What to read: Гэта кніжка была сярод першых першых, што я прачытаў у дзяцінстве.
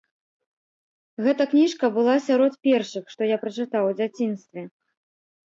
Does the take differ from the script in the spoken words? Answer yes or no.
yes